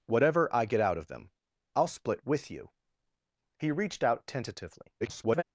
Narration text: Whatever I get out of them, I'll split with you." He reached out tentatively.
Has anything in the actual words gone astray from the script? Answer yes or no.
yes